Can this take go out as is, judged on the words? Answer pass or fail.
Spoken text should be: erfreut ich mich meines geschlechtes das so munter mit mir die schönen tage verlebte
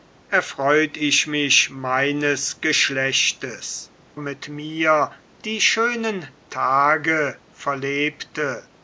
fail